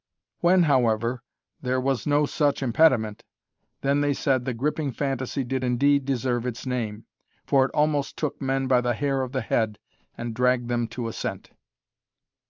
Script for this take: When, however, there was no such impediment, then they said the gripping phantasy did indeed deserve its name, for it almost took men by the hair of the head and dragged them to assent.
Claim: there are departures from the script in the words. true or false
false